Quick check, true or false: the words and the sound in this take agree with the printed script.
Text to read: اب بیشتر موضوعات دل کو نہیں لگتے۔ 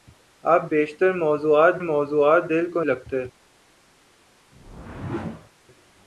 false